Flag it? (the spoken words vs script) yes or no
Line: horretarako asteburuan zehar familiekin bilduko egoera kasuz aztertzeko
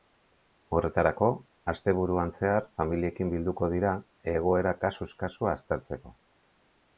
yes